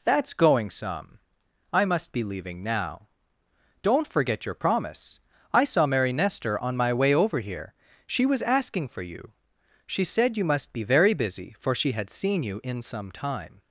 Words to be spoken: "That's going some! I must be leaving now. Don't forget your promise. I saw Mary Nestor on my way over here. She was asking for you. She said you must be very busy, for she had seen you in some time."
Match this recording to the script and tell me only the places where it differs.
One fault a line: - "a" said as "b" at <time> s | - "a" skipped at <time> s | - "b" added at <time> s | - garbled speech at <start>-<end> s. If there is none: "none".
none